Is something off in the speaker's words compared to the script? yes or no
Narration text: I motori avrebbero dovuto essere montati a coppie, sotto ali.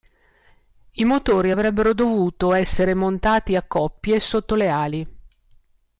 yes